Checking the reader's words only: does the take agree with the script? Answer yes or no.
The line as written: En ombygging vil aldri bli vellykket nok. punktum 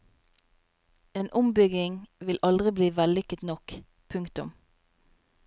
yes